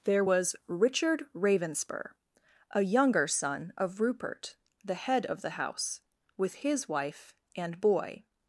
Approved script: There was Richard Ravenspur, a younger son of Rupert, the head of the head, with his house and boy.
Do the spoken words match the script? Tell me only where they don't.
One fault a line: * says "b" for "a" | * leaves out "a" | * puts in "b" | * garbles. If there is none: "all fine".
* says "house" for "head"
* says "wife" for "house"